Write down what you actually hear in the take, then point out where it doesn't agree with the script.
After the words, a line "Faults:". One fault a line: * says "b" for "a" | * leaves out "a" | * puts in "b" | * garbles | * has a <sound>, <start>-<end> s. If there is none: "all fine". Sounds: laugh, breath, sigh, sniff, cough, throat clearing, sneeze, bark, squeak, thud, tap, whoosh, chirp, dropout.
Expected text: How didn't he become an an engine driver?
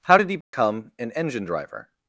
How did he become an engine driver?
Faults:
* says "did" for "didn't"
* has a dropout, 0.4-0.5 s
* leaves out "an"